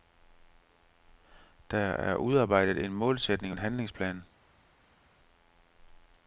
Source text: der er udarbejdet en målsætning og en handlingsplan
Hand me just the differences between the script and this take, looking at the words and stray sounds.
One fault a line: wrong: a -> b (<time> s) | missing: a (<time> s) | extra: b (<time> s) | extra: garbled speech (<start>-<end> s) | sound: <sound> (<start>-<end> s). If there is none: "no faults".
missing: og (3.5 s)